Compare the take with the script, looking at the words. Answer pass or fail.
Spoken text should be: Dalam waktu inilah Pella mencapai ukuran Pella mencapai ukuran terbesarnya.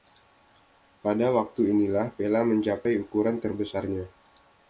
fail